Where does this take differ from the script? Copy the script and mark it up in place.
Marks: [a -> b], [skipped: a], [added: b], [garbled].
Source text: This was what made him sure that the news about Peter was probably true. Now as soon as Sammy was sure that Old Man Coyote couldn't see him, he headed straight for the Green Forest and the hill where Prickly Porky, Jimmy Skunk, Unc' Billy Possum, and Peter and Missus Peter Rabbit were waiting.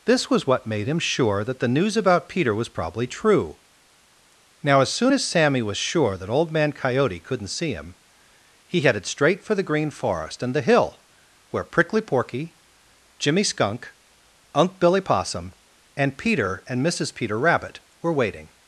This was what made him sure that the news about Peter was probably true. Now as soon as Sammy was sure that Old Man Coyote couldn't see him, he headed straight for the Green Forest and the hill where Prickly Porky, Jimmy Skunk, Unc' Billy Possum, and Peter and Missus Peter Rabbit were waiting.